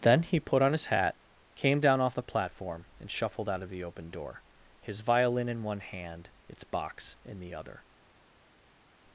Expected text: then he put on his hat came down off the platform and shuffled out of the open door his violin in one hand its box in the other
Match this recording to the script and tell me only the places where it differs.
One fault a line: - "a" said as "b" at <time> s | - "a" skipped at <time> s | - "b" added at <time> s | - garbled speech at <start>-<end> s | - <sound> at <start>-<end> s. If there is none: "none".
none